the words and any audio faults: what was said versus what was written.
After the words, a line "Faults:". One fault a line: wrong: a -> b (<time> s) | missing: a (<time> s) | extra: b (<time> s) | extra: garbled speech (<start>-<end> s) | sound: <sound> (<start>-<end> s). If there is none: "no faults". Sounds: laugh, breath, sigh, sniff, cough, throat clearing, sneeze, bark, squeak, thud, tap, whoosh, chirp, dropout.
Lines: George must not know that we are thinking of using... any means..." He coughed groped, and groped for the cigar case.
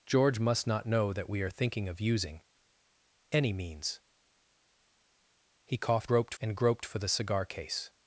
George must not know that we are thinking of using... any means..." He coughed groped, and groped for the cigar case.
Faults:
no faults